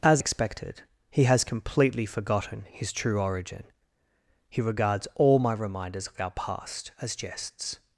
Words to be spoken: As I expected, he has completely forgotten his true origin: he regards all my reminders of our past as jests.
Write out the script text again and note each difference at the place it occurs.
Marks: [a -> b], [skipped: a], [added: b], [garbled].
As [skipped: I] expected, he has completely forgotten his true origin: he regards all my reminders of our past as jests.